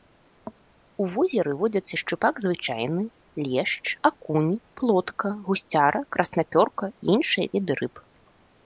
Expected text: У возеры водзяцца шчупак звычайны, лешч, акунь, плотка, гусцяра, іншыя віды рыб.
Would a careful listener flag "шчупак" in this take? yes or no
no